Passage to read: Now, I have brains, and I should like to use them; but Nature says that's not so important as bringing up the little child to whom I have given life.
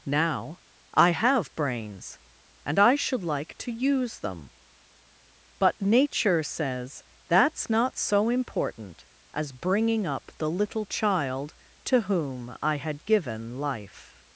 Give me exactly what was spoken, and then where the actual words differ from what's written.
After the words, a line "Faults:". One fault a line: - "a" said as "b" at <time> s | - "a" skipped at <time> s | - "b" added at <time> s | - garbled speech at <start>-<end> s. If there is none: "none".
Now, I have brains, and I should like to use them; but Nature says that's not so important as bringing up the little child to whom I had given life.
Faults:
- "have" said as "had" at 12.8 s